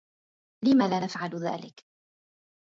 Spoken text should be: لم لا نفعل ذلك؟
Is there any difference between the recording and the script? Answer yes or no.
no